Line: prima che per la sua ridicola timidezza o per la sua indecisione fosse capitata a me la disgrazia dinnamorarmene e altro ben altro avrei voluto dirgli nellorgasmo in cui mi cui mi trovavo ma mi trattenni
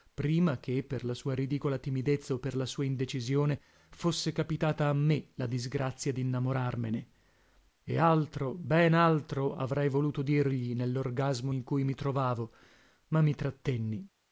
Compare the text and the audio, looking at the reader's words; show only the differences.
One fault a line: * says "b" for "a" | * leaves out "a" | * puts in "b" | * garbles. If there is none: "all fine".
* leaves out "cui mi"